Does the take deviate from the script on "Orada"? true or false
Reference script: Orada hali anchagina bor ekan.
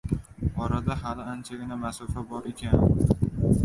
false